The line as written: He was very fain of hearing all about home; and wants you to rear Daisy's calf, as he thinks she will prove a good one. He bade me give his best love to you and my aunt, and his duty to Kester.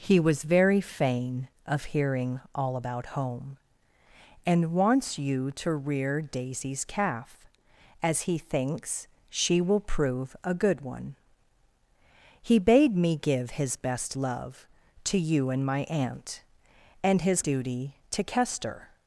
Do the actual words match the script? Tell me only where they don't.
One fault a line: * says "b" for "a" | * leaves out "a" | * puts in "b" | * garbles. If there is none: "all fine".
all fine